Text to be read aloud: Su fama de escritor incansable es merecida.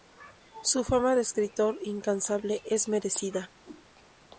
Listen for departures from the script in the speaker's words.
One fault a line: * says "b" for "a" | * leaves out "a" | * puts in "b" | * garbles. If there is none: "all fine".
all fine